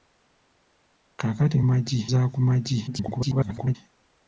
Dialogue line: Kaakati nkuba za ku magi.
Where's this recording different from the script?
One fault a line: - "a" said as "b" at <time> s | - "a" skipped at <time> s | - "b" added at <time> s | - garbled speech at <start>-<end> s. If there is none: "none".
- "nkuba" said as "magi" at 1.7 s
- garbled speech at 2.9-3.8 s